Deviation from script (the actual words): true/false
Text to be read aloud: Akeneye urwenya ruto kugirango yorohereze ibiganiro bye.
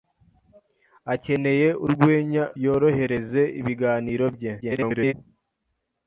true